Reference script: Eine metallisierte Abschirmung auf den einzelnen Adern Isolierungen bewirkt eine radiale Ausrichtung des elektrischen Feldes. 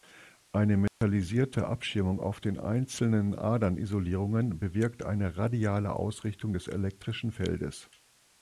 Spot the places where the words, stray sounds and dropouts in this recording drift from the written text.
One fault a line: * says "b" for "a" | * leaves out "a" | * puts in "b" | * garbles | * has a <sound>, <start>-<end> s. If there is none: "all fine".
* has a dropout, 0.9-1.0 s